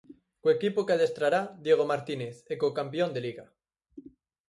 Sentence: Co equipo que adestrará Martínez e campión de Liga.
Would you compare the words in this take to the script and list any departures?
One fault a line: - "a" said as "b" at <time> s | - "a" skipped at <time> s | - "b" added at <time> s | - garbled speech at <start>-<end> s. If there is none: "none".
- "Diego" added at 1.6 s
- "co" added at 2.6 s